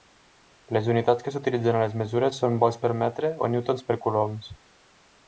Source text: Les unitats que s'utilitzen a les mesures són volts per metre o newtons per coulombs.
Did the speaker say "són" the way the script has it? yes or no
yes